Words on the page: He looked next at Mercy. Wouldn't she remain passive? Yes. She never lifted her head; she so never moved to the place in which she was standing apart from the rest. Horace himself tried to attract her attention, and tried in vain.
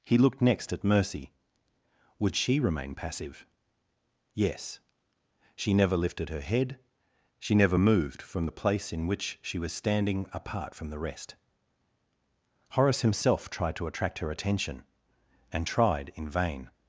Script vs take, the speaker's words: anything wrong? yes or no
yes